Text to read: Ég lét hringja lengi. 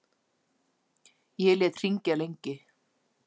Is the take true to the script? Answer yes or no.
yes